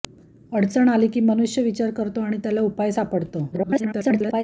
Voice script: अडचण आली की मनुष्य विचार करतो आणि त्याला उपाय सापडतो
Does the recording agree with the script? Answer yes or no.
no